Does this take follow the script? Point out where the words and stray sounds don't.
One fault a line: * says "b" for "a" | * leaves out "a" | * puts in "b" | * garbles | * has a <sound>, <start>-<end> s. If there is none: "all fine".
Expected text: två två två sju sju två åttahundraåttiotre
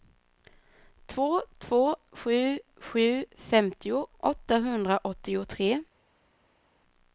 * leaves out "två"
* says "femtio" for "två"